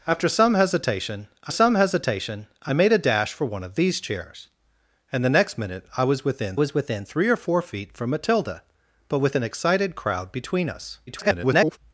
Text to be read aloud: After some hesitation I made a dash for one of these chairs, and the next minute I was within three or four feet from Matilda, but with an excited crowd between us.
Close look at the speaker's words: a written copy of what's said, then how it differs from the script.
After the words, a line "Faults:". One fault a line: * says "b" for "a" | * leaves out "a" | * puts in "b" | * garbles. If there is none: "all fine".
After some hesitation I some hesitation I made a dash for one of these chairs, and the next minute I was within was within three or four feet from Matilda, but with an excited crowd between us. [garbled]
Faults:
* puts in "some hesitation I"
* puts in "was within"
* garbles